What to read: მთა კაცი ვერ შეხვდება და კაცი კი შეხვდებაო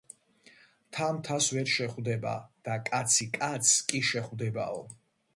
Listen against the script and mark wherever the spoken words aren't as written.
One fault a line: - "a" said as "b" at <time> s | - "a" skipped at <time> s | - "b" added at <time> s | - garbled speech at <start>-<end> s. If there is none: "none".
- "კაცი" said as "მთას" at 1.2 s
- "კაცს" added at 3.4 s